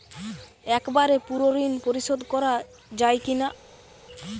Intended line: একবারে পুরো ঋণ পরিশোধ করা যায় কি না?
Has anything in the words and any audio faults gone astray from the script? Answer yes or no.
no